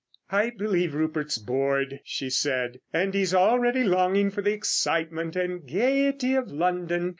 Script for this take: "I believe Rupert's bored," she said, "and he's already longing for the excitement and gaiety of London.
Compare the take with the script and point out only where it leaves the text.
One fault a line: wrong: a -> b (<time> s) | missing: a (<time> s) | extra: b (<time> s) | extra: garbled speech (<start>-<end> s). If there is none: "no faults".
no faults